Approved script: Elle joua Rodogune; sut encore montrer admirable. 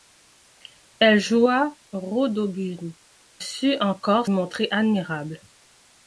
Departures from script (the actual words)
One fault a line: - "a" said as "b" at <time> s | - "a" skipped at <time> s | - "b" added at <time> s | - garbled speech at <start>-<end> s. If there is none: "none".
none